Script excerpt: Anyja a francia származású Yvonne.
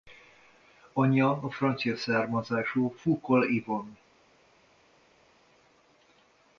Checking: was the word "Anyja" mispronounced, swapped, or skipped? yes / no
no